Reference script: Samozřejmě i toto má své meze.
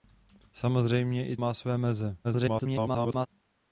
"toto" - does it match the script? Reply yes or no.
no